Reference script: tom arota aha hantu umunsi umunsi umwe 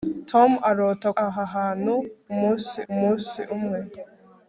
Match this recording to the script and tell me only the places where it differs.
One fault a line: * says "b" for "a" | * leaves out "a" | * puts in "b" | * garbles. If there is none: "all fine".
all fine